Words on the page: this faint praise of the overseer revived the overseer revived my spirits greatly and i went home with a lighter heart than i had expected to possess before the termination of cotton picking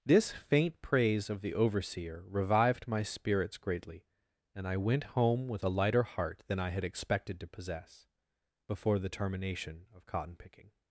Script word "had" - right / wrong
right